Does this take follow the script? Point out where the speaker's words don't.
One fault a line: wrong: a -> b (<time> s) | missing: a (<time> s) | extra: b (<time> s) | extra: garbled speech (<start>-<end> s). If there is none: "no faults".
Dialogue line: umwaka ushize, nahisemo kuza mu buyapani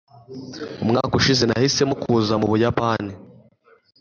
no faults